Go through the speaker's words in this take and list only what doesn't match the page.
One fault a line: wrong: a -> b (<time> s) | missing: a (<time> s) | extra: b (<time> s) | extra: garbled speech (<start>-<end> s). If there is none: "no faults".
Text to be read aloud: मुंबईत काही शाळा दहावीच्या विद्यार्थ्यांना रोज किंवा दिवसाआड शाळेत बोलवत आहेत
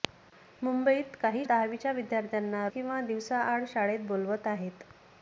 missing: शाळा (1.4 s)
missing: रोज (2.7 s)